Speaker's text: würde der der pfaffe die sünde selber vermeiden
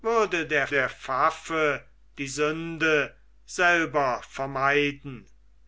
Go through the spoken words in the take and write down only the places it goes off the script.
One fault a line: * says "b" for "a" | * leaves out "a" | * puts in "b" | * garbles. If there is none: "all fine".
all fine